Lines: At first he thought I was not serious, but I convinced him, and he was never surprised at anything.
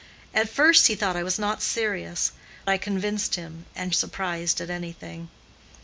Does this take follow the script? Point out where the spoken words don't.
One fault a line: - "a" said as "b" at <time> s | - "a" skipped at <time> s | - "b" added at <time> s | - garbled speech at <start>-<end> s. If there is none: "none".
- "but" skipped at 2.3 s
- "he was never" skipped at 3.9 s